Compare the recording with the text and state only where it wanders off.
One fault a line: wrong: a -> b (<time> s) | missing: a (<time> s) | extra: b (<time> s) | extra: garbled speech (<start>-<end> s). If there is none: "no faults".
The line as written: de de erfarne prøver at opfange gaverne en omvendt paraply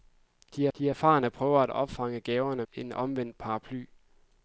no faults